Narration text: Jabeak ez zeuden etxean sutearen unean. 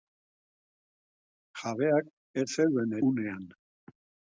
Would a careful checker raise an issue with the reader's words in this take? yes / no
yes